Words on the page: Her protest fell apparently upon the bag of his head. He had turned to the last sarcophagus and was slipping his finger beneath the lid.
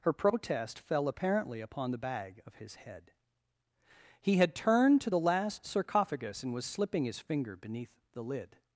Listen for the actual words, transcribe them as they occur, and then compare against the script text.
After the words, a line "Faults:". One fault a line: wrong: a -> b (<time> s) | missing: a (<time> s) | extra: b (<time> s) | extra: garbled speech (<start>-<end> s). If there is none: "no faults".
Her protest fell apparently upon the bag of his head. He had turned to the last sarcophagus and was slipping his finger beneath the lid.
Faults:
no faults